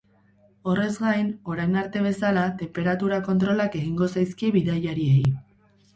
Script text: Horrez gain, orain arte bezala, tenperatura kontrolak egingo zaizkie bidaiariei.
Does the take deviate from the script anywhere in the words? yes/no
no